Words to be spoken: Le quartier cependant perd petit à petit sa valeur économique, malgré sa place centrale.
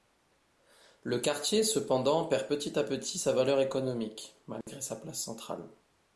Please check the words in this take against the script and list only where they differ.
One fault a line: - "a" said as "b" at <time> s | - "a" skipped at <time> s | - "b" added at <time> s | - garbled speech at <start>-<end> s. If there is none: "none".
none